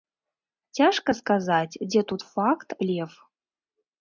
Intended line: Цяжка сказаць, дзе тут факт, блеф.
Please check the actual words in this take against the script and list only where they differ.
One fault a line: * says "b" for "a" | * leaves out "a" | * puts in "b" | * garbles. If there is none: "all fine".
all fine